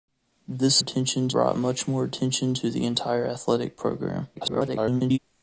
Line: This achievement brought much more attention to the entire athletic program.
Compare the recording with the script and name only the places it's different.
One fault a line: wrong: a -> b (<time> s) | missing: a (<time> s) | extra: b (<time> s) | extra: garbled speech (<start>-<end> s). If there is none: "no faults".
wrong: achievement -> attention (0.8 s)
extra: garbled speech (4.4-5.2 s)